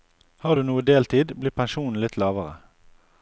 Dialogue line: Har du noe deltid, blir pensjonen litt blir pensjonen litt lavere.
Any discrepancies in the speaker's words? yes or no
yes